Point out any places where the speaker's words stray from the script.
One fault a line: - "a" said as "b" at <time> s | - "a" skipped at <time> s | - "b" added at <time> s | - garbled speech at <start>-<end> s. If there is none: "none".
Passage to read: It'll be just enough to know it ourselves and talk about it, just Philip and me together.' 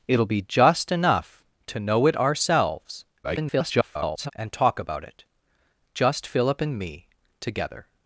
- garbled speech at 3.2-4.3 s